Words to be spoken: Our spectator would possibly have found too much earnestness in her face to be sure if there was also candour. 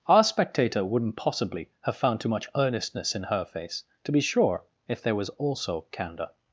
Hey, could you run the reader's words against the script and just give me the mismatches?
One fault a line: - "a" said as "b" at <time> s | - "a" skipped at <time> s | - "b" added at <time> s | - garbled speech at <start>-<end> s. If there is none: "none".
- "would" said as "wouldn't" at 0.8 s